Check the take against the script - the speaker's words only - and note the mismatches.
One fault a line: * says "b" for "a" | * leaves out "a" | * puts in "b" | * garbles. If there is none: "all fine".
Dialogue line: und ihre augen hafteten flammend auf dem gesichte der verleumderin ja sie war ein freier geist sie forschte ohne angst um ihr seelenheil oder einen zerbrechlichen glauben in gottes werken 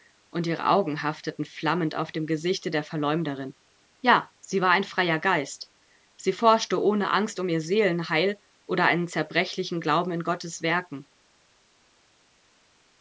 all fine